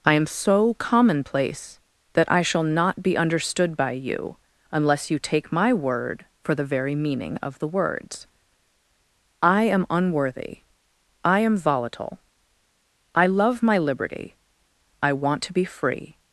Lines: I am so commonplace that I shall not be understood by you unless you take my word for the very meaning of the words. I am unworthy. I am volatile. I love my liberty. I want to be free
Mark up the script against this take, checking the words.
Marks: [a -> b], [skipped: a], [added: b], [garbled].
I am so commonplace that I shall not be understood by you unless you take my word for the very meaning of the words. I am unworthy. I am volatile. I love my liberty. I want to be free